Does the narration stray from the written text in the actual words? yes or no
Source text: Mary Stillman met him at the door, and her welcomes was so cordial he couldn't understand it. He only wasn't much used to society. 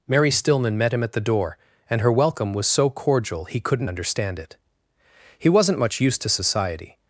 yes